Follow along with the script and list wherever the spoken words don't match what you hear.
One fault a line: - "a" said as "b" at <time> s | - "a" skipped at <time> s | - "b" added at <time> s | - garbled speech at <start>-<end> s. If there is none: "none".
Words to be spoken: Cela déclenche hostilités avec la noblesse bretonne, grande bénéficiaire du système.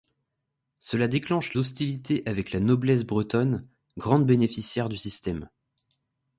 none